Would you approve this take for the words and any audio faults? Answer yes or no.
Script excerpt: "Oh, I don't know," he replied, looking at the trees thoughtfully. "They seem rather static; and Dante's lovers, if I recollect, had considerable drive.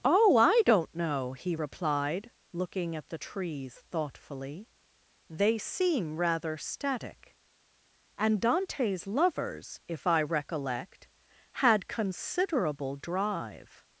yes